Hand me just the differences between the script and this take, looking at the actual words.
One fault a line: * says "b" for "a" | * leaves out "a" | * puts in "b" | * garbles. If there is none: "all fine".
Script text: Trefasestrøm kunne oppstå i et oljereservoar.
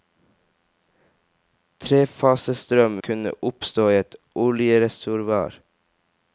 all fine